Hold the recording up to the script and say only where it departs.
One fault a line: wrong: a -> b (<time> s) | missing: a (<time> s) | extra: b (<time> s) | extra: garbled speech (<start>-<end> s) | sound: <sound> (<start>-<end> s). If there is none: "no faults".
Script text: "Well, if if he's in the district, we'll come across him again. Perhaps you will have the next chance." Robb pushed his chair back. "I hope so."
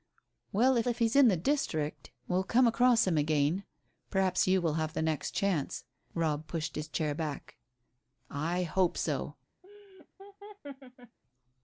sound: laugh (9.6-11.2 s)